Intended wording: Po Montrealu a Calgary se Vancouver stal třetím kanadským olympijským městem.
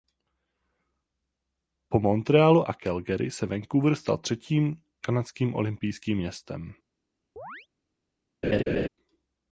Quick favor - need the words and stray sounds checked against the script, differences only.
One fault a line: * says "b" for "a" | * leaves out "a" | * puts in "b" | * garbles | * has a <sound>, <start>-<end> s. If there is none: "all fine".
* has a chirp, 7.4-7.7 s
* has a laugh, 8.4-8.9 s